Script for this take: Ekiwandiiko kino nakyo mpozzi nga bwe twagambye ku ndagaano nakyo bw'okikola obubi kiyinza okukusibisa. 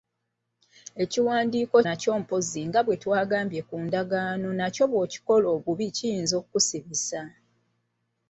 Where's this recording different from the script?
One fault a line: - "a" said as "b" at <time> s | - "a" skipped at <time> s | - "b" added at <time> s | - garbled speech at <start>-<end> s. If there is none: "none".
- "kino" skipped at 1.8 s